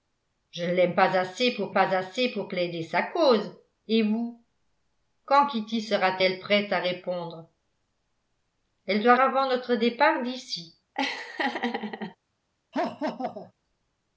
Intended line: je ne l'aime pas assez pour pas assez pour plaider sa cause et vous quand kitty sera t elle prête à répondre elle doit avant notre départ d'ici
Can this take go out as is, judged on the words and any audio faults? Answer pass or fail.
fail